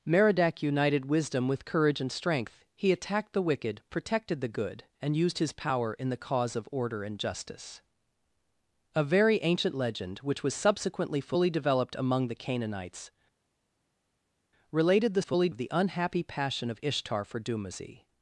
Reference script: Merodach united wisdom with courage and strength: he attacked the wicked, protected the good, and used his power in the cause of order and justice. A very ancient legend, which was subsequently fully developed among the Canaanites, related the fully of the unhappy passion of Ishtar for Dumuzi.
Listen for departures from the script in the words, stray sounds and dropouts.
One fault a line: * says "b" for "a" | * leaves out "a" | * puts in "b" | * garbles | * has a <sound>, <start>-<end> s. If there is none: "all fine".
all fine